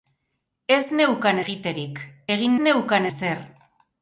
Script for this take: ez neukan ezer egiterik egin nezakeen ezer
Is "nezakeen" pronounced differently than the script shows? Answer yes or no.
yes